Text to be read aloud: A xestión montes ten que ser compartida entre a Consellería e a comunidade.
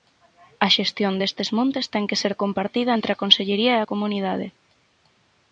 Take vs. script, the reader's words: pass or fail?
fail